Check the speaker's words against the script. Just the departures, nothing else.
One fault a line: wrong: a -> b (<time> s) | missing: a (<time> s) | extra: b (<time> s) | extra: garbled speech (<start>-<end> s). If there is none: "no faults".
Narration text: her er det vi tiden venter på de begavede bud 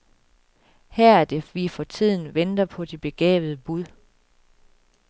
extra: for (1.7 s)